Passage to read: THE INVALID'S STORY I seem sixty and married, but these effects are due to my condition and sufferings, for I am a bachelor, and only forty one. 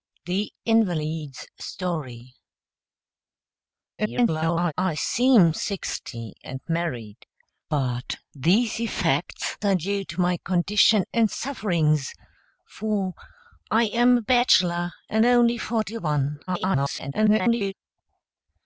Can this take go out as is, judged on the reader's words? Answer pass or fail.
fail